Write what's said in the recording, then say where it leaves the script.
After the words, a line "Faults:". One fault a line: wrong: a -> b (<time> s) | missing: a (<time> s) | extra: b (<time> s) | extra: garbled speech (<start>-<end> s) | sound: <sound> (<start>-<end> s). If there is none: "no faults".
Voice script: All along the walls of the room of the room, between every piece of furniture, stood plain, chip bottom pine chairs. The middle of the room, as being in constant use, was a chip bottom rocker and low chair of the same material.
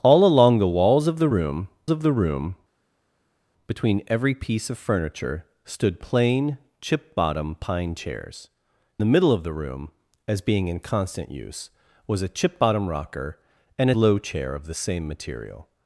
All along the walls of the room of the room, between every piece of furniture, stood plain, chip bottom pine chairs. The middle of the room, as being in constant use, was a chip bottom rocker and low chair of the same material.
Faults:
no faults